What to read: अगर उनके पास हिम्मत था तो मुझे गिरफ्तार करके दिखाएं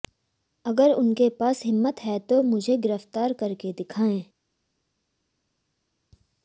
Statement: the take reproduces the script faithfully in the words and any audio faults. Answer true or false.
false